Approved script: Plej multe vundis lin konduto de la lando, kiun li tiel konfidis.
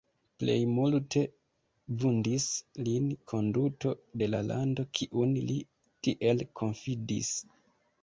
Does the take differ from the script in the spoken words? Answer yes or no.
no